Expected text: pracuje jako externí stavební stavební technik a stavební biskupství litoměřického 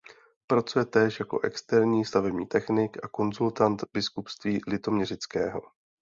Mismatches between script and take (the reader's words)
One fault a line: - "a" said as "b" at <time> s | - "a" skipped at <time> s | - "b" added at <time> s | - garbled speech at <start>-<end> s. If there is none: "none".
- "též" added at 0.8 s
- "stavební" skipped at 2.5 s
- "stavební" said as "konzultant" at 3.1 s